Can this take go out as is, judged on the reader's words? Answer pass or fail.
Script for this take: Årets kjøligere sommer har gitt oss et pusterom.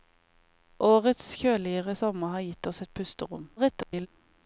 fail